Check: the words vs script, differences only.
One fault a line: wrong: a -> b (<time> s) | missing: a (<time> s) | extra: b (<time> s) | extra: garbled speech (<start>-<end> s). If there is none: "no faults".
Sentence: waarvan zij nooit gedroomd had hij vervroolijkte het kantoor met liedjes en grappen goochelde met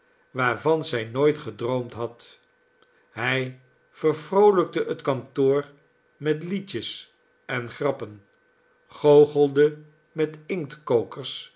no faults